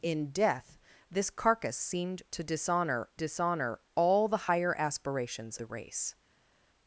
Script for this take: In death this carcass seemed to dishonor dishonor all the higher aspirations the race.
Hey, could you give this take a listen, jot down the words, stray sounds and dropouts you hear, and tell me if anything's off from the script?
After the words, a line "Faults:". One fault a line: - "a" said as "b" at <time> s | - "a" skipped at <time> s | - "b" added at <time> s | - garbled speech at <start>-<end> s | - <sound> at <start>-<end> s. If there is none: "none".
In death this carcass seemed to dishonor dishonor all the higher aspirations the race.
Faults:
none